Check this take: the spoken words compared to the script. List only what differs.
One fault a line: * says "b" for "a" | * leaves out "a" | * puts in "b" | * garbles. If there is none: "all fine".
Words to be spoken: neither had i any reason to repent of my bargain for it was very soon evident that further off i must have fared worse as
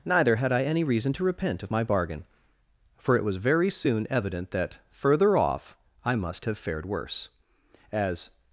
all fine